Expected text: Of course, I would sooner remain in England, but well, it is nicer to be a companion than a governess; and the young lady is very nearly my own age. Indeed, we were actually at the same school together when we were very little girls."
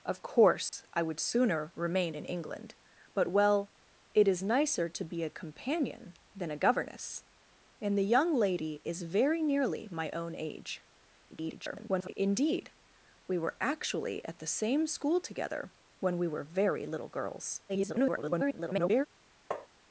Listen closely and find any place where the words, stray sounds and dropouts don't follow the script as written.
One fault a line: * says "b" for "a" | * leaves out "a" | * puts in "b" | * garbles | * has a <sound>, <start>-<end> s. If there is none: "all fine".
* has a dropout, 0.7-0.7 s
* garbles
* garbles
* has a tap, 19.5-19.7 s